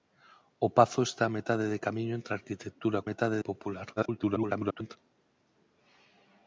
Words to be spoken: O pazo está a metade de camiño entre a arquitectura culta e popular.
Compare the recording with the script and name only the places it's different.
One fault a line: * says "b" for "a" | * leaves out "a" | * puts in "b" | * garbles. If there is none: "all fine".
* says "metade" for "culta"
* garbles